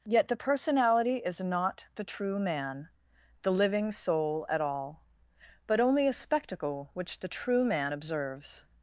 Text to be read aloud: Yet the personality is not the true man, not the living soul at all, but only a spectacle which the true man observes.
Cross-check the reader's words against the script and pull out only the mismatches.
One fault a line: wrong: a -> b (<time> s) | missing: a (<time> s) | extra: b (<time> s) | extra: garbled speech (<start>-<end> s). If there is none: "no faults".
missing: not (2.9 s)